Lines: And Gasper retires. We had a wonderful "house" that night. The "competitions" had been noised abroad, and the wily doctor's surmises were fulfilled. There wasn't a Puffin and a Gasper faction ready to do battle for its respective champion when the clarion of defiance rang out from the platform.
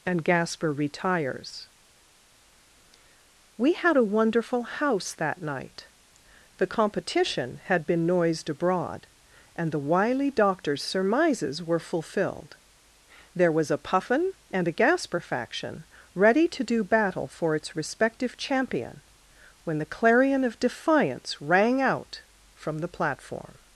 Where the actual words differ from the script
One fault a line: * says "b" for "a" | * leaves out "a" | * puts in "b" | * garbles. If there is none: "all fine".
* says "competition" for "competitions"
* says "was" for "wasn't"